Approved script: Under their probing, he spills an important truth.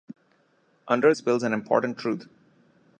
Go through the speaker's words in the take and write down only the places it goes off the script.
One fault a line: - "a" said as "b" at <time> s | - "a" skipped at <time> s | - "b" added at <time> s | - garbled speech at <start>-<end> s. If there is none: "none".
- "their probing he" skipped at 1.1 s